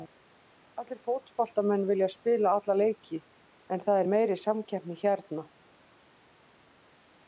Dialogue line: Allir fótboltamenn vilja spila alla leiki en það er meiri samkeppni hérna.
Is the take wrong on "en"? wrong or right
right